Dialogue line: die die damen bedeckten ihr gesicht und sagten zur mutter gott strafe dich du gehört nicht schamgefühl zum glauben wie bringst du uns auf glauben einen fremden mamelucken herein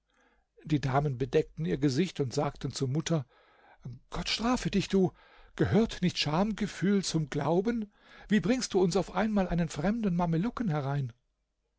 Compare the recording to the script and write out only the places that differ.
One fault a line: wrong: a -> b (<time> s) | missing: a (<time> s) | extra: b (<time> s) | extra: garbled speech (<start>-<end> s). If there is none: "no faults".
missing: die (0.8 s)
wrong: glauben -> einmal (9.2 s)